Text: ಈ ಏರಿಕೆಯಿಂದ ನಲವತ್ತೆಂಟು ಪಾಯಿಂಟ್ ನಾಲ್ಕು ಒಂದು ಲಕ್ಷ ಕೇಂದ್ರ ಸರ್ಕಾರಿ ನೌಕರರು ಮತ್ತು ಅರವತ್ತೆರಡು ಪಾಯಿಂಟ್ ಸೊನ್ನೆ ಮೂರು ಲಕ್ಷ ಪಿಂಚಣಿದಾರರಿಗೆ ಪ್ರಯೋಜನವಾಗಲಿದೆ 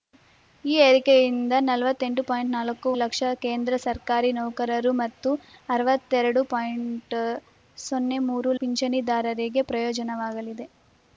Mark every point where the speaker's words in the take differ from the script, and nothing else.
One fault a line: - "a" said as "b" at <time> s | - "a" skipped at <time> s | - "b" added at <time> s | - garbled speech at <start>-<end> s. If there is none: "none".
- "ಒಂದು" skipped at 2.9 s
- "ಲಕ್ಷ" skipped at 8.5 s